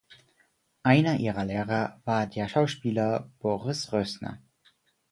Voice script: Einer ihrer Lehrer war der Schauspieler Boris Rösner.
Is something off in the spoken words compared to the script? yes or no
no